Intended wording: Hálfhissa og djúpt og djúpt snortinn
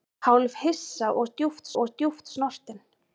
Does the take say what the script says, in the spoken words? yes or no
yes